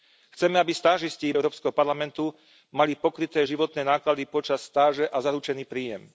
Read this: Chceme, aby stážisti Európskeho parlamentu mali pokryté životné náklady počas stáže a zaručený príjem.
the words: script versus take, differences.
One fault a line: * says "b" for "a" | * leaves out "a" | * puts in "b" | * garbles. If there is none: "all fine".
all fine